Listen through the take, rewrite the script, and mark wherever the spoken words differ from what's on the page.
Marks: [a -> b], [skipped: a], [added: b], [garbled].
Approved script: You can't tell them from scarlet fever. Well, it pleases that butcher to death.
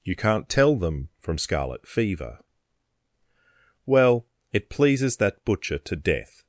You can't tell them from scarlet fever. Well, it pleases that butcher to death.